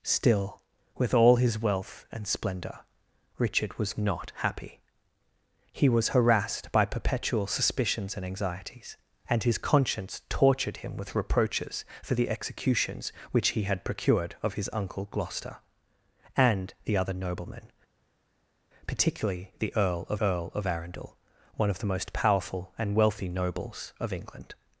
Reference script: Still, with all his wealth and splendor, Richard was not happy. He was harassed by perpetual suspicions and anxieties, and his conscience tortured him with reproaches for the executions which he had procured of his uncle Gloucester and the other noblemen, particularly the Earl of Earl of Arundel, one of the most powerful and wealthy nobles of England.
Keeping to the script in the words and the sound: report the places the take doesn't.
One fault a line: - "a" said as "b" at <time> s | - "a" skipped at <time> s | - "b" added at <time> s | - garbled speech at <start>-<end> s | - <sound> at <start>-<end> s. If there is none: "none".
none